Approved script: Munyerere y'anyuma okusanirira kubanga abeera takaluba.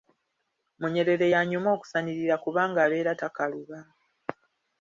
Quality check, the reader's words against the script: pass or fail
pass